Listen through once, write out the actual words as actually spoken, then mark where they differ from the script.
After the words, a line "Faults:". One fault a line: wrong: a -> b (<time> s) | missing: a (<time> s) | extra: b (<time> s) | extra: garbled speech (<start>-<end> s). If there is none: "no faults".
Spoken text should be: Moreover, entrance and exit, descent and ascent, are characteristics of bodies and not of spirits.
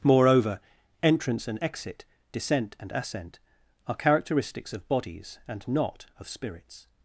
Moreover, entrance and exit, descent and ascent, are characteristics of bodies and not of spirits.
Faults:
no faults